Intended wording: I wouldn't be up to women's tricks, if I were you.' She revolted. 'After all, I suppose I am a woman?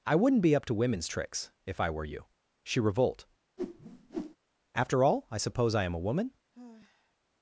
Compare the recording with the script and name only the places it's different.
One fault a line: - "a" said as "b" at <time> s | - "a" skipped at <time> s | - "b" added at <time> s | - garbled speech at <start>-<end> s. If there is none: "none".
- "revolted" said as "revolt" at 2.8 s